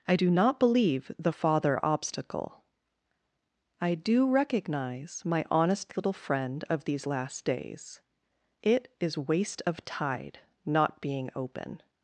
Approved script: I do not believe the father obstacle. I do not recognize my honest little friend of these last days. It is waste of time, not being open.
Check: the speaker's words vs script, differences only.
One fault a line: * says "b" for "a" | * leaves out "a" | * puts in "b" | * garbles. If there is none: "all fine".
* leaves out "not"
* says "tide" for "time"